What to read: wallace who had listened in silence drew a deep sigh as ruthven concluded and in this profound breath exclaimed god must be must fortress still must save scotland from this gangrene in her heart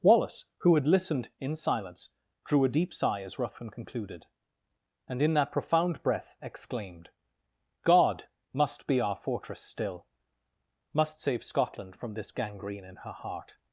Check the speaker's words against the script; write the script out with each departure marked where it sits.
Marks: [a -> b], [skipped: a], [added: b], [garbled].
wallace who had listened in silence drew a deep sigh as ruthven concluded and in [this -> that] profound breath exclaimed god must be [must -> our] fortress still must save scotland from this gangrene in her heart